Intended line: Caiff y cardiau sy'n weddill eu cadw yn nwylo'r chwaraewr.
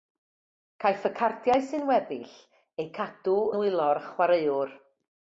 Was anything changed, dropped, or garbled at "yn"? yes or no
yes